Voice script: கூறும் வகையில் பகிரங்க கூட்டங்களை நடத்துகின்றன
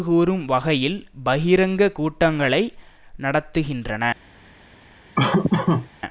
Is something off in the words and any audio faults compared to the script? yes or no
yes